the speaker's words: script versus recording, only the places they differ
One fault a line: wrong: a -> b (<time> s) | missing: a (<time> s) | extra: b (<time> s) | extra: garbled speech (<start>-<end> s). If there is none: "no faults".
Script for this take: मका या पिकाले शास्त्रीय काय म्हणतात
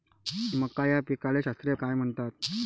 no faults